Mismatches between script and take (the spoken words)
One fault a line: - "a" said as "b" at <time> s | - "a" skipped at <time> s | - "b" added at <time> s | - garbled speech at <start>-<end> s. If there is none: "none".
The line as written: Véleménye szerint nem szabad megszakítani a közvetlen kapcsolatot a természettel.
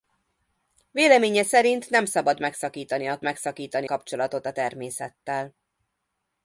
- "közvetlen" said as "megszakítani" at 3.2 s